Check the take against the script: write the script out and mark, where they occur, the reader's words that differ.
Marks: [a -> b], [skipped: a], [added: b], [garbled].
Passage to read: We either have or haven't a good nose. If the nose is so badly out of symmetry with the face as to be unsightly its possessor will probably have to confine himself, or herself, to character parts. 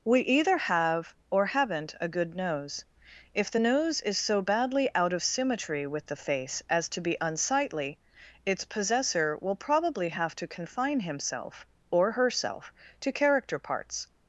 We either have or haven't a good nose. If the nose is so badly out of symmetry with the face as to be unsightly its possessor will probably have to confine himself, or herself, to character parts.